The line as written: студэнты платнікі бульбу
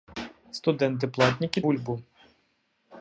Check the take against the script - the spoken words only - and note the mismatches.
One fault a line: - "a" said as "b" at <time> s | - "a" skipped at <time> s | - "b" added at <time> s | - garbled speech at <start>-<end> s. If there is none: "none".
none